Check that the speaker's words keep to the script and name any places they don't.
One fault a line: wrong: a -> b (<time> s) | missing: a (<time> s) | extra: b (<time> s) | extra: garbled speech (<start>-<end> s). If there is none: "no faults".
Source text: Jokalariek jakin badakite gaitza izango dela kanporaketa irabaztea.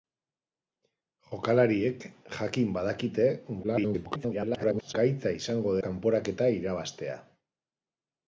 extra: garbled speech (3.6-4.9 s)
missing: dela (5.8 s)